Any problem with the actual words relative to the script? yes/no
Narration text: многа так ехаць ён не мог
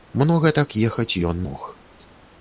yes